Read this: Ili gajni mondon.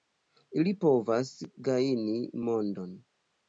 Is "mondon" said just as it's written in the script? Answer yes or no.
yes